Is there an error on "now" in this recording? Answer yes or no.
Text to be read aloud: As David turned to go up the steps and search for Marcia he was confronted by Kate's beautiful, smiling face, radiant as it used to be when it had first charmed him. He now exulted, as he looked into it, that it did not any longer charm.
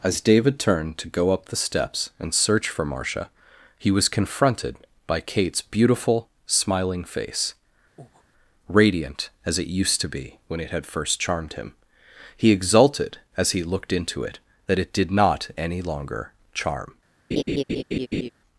yes